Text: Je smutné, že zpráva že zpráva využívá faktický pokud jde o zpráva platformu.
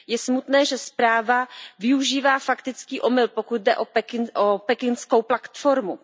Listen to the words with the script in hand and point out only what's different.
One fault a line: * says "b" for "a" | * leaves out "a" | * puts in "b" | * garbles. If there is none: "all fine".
* leaves out "že zpráva"
* puts in "omyl"
* says "pekingskou" for "zpráva"